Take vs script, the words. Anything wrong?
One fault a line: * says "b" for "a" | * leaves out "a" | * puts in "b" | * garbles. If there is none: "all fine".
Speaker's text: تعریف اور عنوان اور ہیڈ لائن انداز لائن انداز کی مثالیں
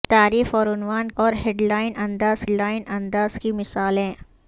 all fine